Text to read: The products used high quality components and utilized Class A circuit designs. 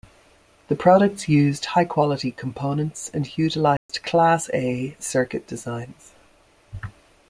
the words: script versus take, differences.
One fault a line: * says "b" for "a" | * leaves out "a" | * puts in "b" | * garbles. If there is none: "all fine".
all fine